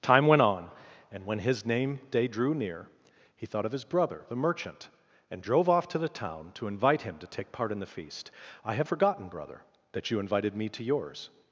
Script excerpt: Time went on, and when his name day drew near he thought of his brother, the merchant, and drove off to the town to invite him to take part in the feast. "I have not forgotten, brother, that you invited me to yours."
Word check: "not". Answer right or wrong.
wrong